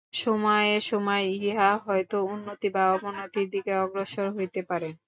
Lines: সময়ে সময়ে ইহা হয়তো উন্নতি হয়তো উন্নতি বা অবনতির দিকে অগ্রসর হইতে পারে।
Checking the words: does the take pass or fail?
fail